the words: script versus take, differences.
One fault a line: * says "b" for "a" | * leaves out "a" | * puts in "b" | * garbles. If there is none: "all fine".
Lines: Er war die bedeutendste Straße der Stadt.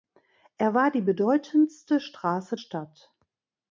* leaves out "der"